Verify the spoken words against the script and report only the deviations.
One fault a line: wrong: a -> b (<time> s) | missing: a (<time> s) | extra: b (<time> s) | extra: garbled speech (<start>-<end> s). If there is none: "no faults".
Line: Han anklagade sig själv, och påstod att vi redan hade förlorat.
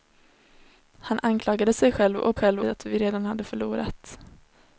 wrong: påstod -> själv (2.3 s)